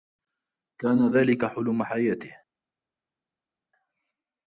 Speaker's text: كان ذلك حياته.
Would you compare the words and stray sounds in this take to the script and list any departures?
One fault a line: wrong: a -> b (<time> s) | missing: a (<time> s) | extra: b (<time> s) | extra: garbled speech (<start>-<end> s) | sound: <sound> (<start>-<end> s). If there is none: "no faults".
extra: حلم (1.4 s)